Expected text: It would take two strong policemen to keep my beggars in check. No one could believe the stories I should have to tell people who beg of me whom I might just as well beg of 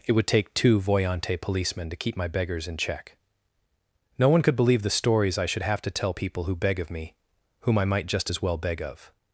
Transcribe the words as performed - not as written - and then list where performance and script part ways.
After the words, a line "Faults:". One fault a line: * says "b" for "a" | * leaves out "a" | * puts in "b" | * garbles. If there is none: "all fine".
It would take two voyante policemen to keep my beggars in check. No one could believe the stories I should have to tell people who beg of me whom I might just as well beg of
Faults:
* says "voyante" for "strong"